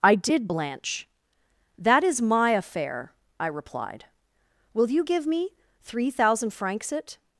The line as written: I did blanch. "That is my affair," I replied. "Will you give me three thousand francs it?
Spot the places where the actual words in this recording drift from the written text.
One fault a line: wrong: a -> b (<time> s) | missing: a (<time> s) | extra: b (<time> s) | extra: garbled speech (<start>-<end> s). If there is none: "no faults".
no faults